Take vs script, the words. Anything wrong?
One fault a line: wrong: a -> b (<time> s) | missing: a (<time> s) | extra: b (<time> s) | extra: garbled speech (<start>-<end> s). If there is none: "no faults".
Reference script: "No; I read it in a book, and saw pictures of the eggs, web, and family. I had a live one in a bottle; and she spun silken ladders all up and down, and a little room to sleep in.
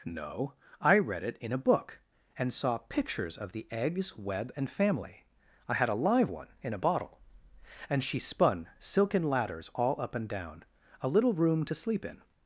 missing: and (10.6 s)